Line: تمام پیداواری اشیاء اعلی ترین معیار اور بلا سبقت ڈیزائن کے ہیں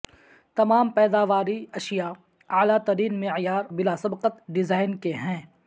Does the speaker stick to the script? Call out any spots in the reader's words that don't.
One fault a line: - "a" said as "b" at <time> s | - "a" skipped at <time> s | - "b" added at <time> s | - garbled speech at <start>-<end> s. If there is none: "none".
- "اور" skipped at 3.6 s